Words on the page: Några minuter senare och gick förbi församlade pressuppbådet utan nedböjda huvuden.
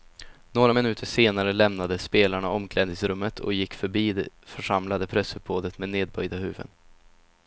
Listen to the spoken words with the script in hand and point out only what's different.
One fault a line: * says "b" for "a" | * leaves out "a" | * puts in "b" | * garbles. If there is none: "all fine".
* puts in "lämnade spelarna omklädningsrummet"
* puts in "det"
* says "med" for "utan"